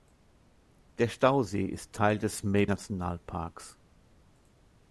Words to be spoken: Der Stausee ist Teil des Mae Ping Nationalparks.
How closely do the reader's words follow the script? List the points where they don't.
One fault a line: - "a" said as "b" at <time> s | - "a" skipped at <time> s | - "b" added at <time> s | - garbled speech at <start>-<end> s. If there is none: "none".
- "Ping" skipped at 2.6 s